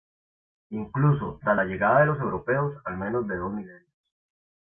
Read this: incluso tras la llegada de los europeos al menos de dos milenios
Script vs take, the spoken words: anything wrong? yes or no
no